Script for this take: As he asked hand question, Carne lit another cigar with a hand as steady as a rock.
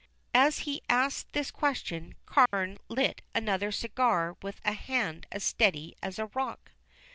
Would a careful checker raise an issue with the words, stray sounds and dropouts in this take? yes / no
yes